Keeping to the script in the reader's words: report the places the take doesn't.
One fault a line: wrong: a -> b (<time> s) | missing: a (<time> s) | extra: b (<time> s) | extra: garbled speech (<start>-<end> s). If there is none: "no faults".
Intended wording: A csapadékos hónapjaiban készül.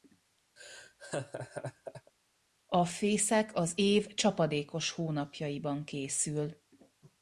extra: fészek az év (2.8 s)